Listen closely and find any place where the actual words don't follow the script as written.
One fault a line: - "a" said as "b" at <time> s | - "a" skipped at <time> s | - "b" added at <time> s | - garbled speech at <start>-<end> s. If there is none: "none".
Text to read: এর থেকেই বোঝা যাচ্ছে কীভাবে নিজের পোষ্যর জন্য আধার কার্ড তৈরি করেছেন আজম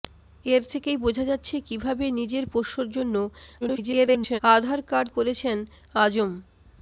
- garbled speech at 3.6-4.4 s
- "তৈরি" skipped at 5.1 s